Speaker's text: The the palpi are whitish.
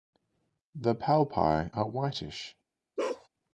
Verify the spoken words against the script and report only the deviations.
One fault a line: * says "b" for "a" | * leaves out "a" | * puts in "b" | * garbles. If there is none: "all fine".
* leaves out "the"